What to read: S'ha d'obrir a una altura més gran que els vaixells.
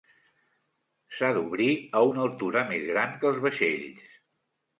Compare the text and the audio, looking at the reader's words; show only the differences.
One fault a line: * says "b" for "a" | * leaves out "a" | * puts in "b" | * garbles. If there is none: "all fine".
all fine